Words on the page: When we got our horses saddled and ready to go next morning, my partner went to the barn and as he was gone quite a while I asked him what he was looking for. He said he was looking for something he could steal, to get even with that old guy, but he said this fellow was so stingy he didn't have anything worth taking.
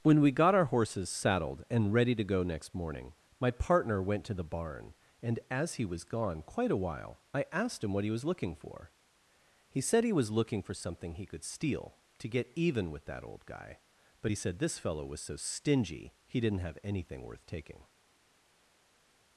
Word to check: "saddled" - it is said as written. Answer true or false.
true